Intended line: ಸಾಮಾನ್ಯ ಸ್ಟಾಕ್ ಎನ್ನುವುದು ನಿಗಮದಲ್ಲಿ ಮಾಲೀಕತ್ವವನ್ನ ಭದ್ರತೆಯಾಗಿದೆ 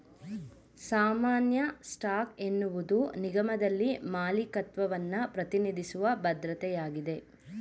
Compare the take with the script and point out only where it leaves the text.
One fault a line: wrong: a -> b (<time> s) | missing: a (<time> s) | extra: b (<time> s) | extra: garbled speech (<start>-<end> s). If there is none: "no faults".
extra: ಪ್ರತಿನಿಧಿಸುವ (5.3 s)